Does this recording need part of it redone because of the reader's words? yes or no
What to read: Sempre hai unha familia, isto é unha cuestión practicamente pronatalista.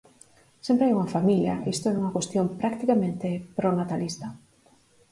no